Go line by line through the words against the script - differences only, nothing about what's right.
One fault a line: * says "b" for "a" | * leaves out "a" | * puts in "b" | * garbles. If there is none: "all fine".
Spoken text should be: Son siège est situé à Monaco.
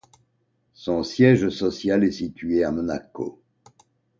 * puts in "social"